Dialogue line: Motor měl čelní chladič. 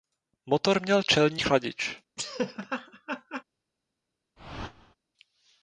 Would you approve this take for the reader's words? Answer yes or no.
yes